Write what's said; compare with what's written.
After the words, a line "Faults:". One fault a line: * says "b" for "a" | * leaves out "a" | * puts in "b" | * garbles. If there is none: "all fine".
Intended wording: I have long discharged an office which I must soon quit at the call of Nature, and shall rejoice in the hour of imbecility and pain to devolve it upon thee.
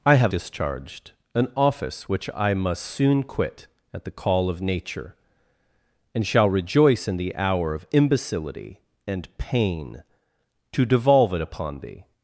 I have discharged an office which I must soon quit at the call of Nature, and shall rejoice in the hour of imbecility and pain to devolve it upon thee.
Faults:
* leaves out "long"